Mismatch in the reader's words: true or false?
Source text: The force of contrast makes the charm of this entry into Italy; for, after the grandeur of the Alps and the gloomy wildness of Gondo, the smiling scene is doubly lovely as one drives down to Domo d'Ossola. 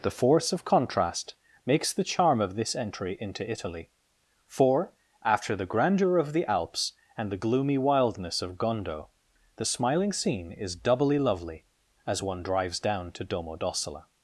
false